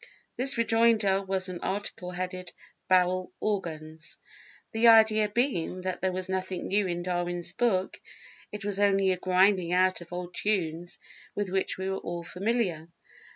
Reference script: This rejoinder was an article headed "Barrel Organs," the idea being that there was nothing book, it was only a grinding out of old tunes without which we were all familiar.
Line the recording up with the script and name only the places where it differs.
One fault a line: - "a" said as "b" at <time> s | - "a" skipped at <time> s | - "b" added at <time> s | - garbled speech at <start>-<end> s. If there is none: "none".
- "new in Darwin's" added at 6.7 s
- "without" said as "with" at 11.4 s